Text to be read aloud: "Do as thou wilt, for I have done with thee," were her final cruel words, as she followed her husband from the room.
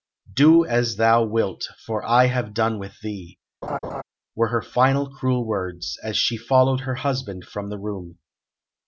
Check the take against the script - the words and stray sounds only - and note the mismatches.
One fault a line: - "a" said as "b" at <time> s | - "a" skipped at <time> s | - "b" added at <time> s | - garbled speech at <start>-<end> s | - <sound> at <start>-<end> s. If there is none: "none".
- laugh at 3.6-4.0 s